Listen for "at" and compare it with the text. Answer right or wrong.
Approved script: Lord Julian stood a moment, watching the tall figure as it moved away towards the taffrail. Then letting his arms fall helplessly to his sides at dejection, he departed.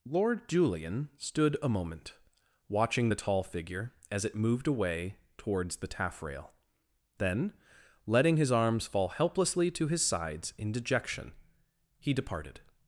wrong